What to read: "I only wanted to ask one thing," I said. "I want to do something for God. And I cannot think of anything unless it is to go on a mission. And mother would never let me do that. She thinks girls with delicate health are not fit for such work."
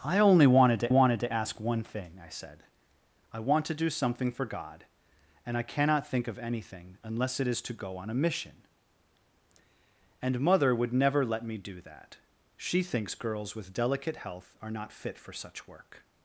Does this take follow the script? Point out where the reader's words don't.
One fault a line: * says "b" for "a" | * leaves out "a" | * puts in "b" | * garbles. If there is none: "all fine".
* puts in "wanted to"